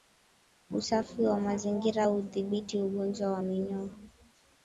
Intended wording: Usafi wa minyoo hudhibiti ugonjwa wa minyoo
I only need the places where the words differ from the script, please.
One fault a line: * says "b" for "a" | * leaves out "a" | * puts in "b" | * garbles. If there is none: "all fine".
* says "mazingira" for "minyoo"